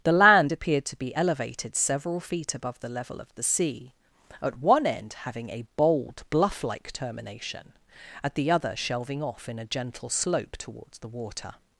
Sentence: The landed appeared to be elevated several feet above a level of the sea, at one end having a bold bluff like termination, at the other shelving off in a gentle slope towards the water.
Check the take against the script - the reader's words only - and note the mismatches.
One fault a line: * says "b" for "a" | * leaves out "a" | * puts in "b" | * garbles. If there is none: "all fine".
* says "land" for "landed"
* says "the" for "a"